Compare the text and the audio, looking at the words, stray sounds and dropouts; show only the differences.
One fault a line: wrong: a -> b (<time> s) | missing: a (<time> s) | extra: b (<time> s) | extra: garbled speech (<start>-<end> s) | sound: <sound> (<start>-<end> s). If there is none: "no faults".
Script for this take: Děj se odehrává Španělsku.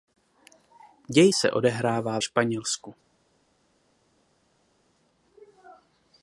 no faults